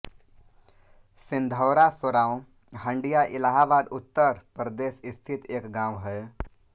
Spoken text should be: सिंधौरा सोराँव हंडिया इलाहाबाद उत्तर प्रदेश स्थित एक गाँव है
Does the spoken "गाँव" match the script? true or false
true